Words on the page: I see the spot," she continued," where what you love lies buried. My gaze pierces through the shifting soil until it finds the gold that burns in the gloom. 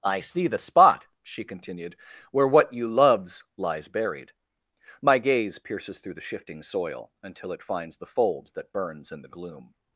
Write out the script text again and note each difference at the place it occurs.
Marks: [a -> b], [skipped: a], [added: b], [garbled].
I see the spot," she continued," where what you [love -> loves] lies buried. My gaze pierces through the shifting soil until it finds the [gold -> fold] that burns in the gloom.